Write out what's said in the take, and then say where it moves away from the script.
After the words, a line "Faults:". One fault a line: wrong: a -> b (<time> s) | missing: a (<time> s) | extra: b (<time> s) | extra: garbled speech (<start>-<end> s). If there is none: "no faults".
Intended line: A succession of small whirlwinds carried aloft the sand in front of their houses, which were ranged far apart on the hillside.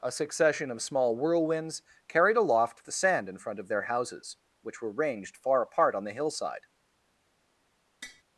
A succession of small whirlwinds carried aloft the sand in front of their houses, which were ranged far apart on the hillside.
Faults:
no faults